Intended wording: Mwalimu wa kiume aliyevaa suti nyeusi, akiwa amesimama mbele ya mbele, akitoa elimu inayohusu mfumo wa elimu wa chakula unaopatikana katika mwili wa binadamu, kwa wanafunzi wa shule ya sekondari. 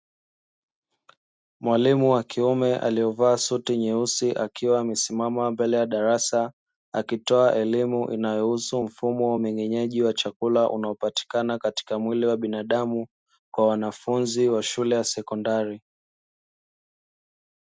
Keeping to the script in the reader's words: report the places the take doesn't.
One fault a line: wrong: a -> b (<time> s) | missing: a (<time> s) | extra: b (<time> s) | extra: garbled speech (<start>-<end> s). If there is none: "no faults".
wrong: mbele -> darasa (5.8 s)
wrong: elimu -> umeng'enyaji (9.3 s)